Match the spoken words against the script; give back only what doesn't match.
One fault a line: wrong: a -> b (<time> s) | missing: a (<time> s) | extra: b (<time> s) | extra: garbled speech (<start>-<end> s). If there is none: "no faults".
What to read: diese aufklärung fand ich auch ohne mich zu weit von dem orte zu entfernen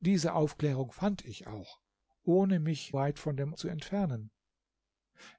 missing: zu (3.0 s)
missing: orte (3.5 s)